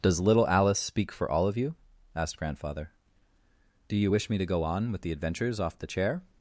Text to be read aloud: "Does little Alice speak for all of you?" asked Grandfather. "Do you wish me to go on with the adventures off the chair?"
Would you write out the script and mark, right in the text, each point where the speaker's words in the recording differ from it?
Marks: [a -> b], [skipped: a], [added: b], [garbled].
"Does little Alice speak for all of you?" asked Grandfather. "Do you wish me to go on with the adventures off the chair?"